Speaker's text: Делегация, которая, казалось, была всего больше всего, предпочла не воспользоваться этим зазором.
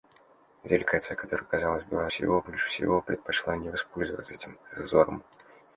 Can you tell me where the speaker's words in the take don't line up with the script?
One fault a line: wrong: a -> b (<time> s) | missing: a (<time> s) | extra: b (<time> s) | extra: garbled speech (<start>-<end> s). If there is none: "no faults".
no faults